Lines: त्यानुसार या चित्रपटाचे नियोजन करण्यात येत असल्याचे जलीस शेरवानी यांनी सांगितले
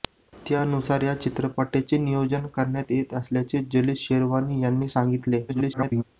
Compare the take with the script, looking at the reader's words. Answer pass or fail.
fail